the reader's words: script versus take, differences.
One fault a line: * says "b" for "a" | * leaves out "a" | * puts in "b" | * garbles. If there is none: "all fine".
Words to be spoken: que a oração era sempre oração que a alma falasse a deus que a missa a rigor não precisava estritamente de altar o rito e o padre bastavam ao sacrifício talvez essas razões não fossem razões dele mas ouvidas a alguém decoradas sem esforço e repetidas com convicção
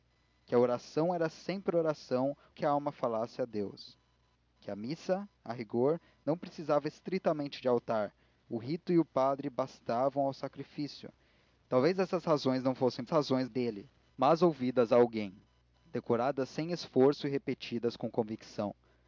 all fine